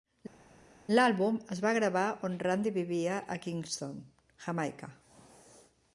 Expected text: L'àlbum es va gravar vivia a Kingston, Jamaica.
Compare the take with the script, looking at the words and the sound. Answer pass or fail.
fail